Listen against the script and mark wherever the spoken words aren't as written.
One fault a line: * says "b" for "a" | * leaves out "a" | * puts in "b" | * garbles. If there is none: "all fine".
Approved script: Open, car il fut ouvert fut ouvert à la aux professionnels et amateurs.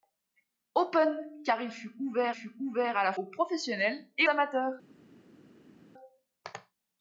all fine